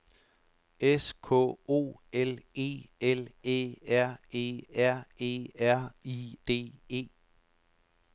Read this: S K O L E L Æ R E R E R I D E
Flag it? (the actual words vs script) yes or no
no